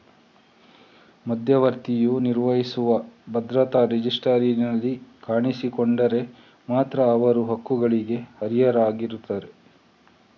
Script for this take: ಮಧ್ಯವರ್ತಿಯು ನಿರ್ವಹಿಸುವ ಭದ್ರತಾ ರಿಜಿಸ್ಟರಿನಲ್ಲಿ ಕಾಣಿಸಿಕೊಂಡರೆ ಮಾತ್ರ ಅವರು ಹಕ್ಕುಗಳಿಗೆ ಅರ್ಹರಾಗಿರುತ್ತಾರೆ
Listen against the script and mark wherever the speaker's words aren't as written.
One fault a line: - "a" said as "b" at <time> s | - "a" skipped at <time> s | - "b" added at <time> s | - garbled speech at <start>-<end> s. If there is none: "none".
none